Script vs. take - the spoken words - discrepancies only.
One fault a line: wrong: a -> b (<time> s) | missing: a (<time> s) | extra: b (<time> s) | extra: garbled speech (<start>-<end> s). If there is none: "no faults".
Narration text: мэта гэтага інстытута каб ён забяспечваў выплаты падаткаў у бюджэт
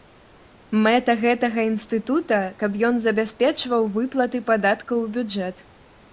no faults